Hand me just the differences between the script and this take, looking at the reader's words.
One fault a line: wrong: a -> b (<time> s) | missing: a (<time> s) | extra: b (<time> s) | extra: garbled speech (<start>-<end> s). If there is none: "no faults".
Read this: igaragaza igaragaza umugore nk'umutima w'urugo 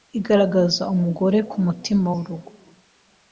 missing: igaragaza (0.8 s)